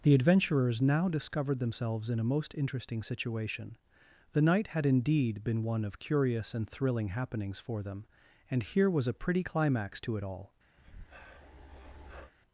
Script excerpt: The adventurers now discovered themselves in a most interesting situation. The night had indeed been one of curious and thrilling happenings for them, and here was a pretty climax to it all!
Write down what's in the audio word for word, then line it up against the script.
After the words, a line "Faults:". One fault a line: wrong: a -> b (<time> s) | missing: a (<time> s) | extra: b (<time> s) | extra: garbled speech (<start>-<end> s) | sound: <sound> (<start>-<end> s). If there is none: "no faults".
The adventurers now discovered themselves in a most interesting situation. The night had indeed been one of curious and thrilling happenings for them, and here was a pretty climax to it all!
Faults:
sound: breath (10.8-12.3 s)